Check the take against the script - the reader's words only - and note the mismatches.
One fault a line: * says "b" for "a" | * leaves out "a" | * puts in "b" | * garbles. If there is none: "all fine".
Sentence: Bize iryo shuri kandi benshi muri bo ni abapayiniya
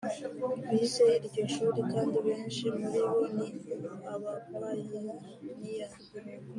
all fine